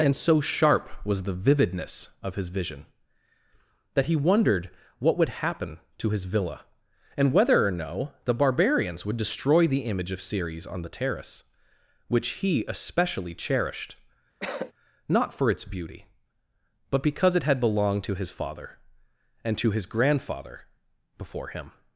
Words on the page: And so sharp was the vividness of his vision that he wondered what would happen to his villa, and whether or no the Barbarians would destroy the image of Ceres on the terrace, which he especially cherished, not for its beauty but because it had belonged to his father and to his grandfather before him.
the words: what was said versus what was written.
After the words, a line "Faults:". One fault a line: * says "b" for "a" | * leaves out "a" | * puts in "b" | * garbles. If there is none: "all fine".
And so sharp was the vividness of his vision that he wondered what would happen to his villa, and whether or no the Barbarians would destroy the image of Ceres on the terrace, which he especially cherished, not for its beauty but because it had belonged to his father and to his grandfather before him.
Faults:
all fine